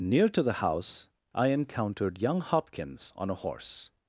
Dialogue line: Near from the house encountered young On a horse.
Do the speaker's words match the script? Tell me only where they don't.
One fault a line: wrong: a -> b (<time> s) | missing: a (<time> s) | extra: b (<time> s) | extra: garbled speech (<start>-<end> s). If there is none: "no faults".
wrong: from -> to (0.3 s)
extra: I (1.3 s)
extra: Hopkins (2.4 s)